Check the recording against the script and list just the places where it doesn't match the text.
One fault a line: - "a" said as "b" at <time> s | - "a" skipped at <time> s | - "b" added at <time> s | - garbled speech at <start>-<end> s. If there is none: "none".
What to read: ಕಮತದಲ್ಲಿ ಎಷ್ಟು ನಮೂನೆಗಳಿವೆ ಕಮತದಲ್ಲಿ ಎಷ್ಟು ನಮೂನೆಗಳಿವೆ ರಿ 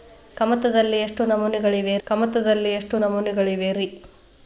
none